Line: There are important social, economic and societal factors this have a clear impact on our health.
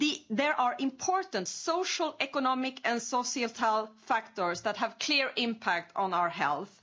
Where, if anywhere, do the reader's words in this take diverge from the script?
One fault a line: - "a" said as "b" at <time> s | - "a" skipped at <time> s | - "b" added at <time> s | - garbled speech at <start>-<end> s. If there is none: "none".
- "this" said as "that" at 4.6 s